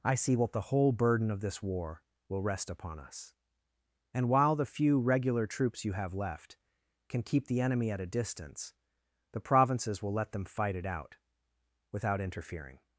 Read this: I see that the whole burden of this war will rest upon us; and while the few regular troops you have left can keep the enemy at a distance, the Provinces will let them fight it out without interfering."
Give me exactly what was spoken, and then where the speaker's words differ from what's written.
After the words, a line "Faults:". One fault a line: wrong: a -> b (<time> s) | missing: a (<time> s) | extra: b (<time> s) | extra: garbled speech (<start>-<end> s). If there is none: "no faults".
I see what the whole burden of this war will rest upon us; and while the few regular troops you have left can keep the enemy at a distance, the Provinces will let them fight it out without interfering."
Faults:
wrong: that -> what (0.3 s)